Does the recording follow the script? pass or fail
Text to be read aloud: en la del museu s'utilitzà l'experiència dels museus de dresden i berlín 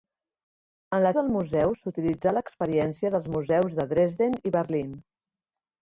pass